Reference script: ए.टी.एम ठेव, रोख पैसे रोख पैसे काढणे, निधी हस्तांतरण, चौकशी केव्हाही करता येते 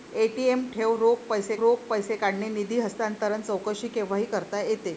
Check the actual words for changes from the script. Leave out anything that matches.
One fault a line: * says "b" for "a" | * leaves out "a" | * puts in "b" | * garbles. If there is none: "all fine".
all fine